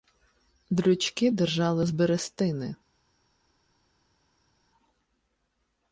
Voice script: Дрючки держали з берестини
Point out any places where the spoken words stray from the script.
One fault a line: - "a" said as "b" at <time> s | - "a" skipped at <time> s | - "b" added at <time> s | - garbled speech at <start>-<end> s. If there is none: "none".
none